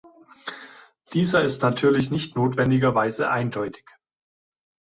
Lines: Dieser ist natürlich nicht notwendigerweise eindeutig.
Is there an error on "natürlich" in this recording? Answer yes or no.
no